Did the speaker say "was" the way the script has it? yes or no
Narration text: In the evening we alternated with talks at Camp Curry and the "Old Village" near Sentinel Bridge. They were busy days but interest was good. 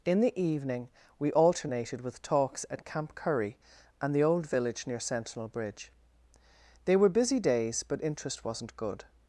no